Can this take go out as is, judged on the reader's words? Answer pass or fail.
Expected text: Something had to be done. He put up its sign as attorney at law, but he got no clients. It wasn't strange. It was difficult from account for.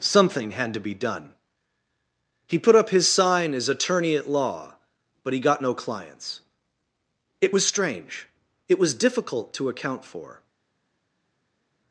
fail